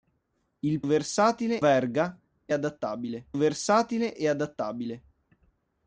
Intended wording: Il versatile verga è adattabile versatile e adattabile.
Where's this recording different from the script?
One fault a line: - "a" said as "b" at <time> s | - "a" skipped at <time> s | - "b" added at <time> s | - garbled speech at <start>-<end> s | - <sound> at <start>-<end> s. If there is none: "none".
none